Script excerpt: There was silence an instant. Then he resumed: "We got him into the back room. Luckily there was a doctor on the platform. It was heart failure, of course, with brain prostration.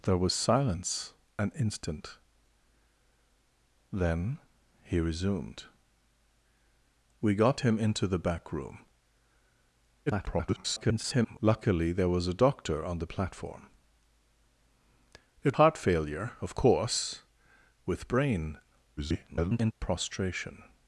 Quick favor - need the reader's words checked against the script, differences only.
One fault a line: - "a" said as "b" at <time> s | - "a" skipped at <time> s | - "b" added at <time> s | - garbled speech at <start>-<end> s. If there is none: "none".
- garbled speech at 10.1-11.4 s
- "was" skipped at 15.6 s
- garbled speech at 19.0-19.7 s